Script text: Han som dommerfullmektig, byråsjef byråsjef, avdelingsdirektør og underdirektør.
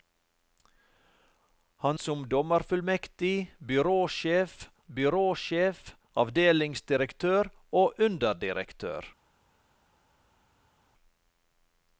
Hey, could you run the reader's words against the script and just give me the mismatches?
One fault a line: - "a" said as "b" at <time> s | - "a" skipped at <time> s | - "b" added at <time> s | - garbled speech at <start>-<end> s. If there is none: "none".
none